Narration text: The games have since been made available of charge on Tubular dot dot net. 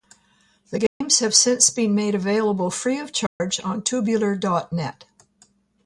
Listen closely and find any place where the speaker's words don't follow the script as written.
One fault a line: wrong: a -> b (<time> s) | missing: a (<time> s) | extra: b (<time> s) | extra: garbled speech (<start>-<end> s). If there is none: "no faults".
extra: free (2.7 s)
missing: dot (4.7 s)